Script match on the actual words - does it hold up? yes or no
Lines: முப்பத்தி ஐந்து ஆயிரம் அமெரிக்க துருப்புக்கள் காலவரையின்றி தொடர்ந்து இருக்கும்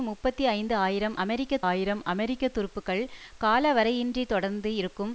no